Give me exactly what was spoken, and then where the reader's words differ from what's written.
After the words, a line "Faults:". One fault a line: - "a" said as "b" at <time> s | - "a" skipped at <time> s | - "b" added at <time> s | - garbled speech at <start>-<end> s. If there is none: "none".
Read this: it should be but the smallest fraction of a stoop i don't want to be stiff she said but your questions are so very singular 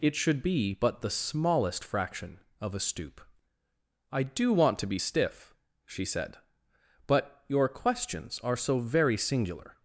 it should be but the smallest fraction of a stoop i do want to be stiff she said but your questions are so very singular
Faults:
- "don't" said as "do" at 4.2 s